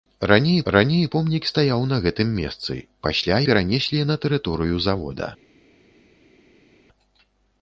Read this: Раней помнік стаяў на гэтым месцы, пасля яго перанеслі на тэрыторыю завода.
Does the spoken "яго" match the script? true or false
false